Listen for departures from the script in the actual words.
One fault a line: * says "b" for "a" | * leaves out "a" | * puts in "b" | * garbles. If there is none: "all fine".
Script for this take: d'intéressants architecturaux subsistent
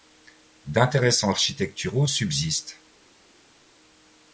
all fine